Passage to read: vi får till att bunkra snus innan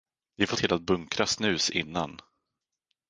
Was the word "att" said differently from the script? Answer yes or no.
no